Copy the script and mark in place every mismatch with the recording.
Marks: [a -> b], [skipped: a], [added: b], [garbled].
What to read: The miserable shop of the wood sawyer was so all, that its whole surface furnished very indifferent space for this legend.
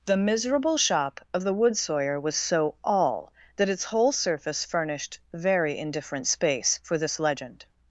The miserable shop of the wood sawyer was so all, that its whole surface furnished very indifferent space for this legend.